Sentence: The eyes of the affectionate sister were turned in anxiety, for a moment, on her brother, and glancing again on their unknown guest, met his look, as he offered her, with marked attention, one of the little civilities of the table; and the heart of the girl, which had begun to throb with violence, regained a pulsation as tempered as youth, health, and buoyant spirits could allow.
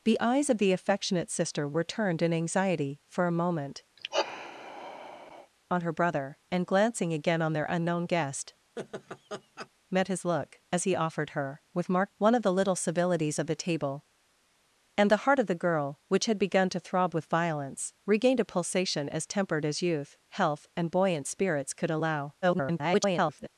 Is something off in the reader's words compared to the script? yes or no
yes